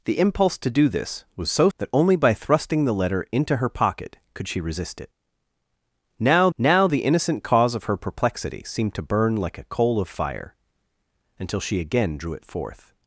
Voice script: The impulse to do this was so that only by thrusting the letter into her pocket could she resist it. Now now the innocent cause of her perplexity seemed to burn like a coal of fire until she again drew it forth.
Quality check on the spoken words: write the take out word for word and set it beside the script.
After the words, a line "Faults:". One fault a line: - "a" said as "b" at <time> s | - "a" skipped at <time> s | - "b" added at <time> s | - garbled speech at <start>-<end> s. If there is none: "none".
The impulse to do this was so that only by thrusting the letter into her pocket could she resist it. Now now the innocent cause of her perplexity seemed to burn like a coal of fire until she again drew it forth.
Faults:
none